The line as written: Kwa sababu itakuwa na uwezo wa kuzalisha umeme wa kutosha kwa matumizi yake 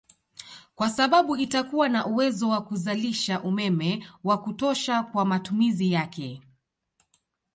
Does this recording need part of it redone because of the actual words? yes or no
no